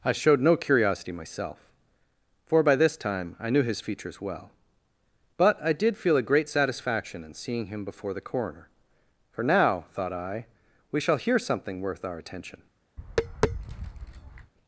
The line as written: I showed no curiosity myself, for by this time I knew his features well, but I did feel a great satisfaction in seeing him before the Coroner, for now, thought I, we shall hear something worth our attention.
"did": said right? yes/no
yes